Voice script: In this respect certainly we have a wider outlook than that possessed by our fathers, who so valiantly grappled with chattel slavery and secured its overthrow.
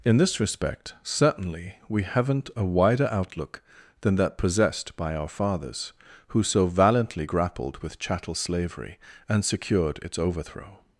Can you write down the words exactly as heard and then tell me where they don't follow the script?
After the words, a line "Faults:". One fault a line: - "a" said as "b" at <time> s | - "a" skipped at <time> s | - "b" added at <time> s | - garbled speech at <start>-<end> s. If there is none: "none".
In this respect certainly we haven't a wider outlook than that possessed by our fathers, who so valiantly grappled with chattel slavery and secured its overthrow.
Faults:
- "have" said as "haven't" at 2.0 s